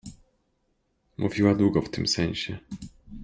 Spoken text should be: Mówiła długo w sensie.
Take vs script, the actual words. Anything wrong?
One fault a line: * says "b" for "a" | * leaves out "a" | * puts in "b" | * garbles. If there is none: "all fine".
* puts in "tym"